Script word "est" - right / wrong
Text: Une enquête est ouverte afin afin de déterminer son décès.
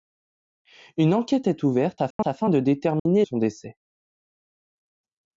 right